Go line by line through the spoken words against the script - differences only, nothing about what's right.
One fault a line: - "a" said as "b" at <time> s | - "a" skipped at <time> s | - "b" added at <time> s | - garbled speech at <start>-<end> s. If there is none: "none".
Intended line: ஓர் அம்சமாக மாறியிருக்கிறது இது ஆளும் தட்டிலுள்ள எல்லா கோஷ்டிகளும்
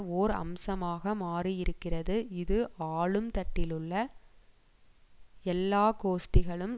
none